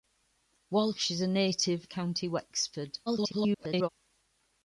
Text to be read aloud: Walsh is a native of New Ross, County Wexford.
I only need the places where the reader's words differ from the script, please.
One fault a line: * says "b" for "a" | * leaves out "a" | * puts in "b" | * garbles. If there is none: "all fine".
* leaves out "of New Ross"
* garbles